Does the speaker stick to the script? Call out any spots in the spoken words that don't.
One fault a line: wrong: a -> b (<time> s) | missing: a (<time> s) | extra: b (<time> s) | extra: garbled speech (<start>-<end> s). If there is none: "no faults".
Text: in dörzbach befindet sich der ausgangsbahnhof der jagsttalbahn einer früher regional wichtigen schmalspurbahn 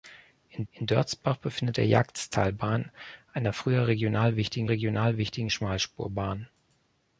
extra: in (0.7 s)
missing: sich (1.8 s)
missing: ausgangsbahnhof der (1.9 s)
extra: regional wichtigen (4.7 s)